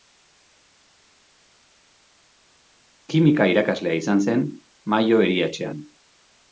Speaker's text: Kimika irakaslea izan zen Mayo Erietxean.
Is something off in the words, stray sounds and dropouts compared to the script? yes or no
no